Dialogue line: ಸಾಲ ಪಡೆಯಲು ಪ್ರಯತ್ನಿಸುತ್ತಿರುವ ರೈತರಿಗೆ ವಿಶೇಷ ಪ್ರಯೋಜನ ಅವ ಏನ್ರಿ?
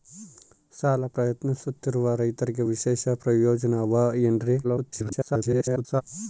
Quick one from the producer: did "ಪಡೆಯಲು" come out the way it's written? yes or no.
no